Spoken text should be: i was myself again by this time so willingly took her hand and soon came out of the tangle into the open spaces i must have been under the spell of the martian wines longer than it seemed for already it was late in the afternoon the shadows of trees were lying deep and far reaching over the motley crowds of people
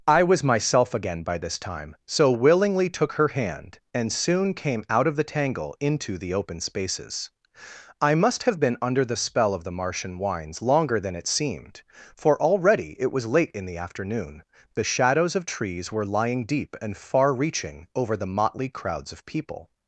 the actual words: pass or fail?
pass